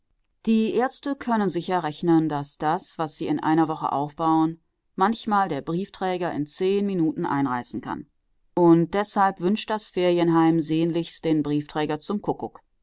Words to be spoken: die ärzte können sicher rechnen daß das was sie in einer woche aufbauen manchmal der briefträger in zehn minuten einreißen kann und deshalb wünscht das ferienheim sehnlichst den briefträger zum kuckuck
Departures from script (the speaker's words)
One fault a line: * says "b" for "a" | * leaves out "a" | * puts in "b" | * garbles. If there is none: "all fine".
all fine